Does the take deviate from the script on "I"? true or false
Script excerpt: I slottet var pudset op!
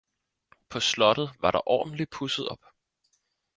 true